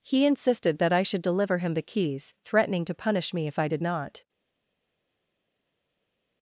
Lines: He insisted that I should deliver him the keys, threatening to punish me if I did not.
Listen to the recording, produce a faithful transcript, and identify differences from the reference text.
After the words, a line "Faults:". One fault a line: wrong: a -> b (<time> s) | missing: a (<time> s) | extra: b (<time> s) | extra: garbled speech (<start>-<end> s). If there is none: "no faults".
He insisted that I should deliver him the keys, threatening to punish me if I did not.
Faults:
no faults